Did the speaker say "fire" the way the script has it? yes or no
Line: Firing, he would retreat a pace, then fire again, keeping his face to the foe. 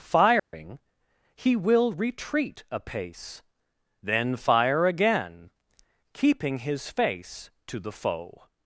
yes